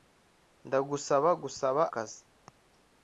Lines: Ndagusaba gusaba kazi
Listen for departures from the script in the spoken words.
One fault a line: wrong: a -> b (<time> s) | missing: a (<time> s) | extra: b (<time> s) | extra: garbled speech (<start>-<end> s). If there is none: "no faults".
no faults